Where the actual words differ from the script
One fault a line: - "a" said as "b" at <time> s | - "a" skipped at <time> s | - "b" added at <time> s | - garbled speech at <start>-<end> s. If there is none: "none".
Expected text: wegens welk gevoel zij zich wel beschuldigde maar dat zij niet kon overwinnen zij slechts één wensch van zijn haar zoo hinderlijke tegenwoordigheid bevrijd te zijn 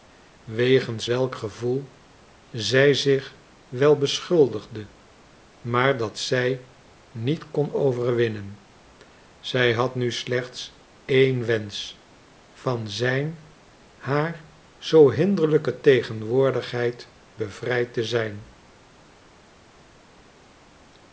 - "had nu" added at 9.7 s